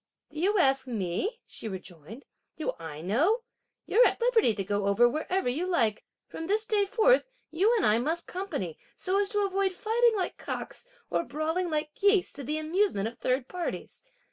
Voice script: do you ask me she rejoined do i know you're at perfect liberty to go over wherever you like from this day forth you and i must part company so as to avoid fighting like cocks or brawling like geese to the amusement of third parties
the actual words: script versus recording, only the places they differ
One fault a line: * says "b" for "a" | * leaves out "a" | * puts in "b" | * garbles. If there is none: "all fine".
* leaves out "perfect"
* leaves out "part"